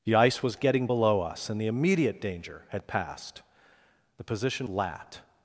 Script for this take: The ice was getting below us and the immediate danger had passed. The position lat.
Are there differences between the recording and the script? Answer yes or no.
no